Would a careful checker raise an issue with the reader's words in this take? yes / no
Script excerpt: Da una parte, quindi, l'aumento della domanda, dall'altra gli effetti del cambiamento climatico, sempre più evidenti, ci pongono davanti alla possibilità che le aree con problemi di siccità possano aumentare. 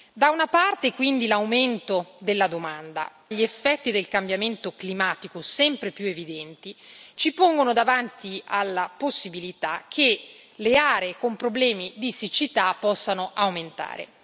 yes